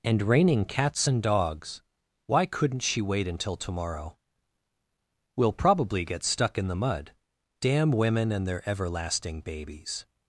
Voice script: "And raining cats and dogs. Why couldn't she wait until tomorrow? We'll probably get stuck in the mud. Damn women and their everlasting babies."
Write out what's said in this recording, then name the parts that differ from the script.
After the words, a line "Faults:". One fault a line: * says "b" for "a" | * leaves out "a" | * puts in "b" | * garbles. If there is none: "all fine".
"And raining cats and dogs. Why couldn't she wait until tomorrow? We'll probably get stuck in the mud. Damn women and their everlasting babies."
Faults:
all fine